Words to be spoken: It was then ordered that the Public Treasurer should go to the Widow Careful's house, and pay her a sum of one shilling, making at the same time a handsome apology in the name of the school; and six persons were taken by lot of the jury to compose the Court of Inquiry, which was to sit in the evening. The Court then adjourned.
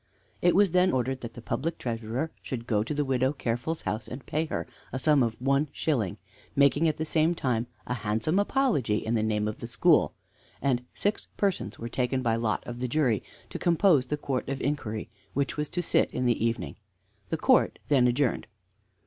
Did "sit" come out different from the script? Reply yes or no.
no